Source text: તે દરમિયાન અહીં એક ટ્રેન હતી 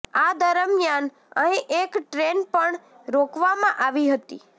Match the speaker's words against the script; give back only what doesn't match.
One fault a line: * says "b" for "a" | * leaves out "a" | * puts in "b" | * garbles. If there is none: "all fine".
* says "આ" for "તે"
* puts in "પણ રોકવામાં આવી"